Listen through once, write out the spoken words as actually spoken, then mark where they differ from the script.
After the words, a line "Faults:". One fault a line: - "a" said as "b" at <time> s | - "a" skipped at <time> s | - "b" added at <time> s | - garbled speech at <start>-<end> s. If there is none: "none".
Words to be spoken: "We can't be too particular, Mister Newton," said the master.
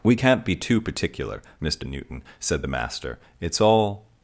"We can't be too particular, Mister Newton," said the master. "It's all
Faults:
- "It's all" added at 3.4 s